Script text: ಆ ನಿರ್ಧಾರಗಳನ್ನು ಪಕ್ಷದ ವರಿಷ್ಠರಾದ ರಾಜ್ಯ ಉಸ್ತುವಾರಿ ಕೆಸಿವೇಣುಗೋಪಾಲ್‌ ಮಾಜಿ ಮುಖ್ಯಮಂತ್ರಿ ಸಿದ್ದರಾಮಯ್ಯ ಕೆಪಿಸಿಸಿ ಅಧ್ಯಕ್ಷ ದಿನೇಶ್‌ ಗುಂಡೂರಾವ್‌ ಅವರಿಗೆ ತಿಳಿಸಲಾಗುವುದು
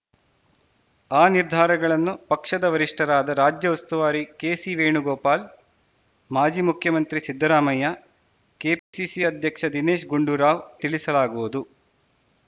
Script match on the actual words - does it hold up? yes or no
no